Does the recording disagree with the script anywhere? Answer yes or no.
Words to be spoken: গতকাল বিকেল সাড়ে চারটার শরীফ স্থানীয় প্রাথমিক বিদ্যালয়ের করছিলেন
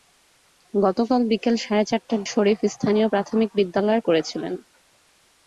no